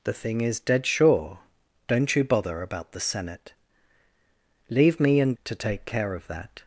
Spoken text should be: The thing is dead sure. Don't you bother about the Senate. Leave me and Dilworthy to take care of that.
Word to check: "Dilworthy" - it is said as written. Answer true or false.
false